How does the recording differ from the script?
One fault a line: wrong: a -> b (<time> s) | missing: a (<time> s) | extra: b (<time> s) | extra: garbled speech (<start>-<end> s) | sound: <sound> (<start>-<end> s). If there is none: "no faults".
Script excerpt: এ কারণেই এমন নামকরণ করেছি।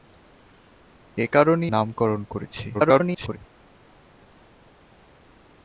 missing: এমন (1.7 s)
extra: garbled speech (2.7-3.4 s)